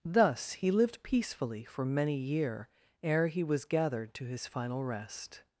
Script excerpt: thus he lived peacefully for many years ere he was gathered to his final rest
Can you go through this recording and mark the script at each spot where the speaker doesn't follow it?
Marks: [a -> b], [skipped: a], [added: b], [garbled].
thus he lived peacefully for many [years -> year] ere he was gathered to his final rest